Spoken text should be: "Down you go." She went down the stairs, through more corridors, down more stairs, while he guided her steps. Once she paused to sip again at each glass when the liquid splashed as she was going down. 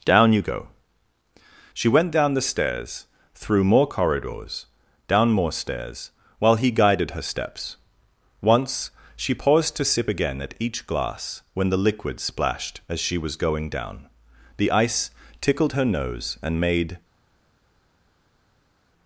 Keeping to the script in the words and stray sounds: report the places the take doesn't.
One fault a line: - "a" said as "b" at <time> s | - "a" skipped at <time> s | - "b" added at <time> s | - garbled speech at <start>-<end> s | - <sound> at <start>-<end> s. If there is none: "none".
- "The ice tickled her nose and made" added at 14.6 s